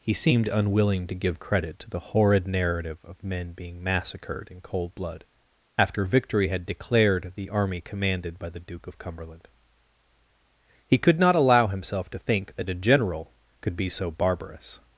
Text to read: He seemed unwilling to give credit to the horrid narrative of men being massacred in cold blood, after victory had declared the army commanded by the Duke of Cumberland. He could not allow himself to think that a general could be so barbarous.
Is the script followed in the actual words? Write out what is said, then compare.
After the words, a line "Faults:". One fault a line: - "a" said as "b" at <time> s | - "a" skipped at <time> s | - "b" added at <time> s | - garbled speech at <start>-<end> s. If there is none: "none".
He seemed unwilling to give credit to the horrid narrative of men being massacred in cold blood, after victory had declared the army commanded by the Duke of Cumberland. He could not allow himself to think that a general could be so barbarous.
Faults:
none